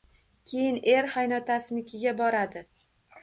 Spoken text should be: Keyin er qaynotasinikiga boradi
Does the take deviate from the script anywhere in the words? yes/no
no